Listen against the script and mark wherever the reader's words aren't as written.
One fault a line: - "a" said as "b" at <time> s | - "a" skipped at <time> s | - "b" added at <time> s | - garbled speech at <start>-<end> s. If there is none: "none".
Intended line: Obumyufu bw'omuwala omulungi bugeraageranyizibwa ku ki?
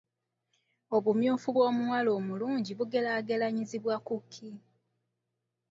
none